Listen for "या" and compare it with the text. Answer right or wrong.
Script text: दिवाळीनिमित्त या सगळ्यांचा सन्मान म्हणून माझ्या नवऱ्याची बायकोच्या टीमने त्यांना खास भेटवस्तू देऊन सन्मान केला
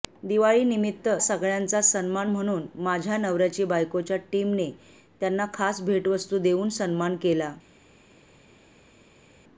wrong